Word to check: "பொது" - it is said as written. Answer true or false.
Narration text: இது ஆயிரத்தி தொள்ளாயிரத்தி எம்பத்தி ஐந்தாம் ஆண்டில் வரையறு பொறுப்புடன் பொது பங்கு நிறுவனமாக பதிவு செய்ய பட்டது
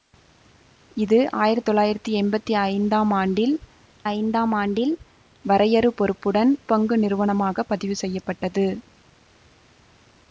false